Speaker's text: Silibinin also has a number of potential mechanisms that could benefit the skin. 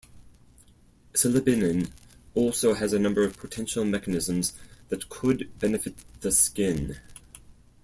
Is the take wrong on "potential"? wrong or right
right